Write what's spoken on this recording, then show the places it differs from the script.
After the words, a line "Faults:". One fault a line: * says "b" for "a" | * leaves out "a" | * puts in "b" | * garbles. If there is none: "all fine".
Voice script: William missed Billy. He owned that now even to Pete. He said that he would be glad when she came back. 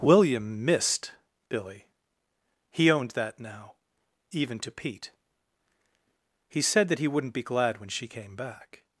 William missed Billy. He owned that now even to Pete. He said that he wouldn't be glad when she came back.
Faults:
* says "wouldn't" for "would"